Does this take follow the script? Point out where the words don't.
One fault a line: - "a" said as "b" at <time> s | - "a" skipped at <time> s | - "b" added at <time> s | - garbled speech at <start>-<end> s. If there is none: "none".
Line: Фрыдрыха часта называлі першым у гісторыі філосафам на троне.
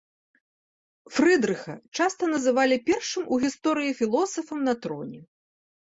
none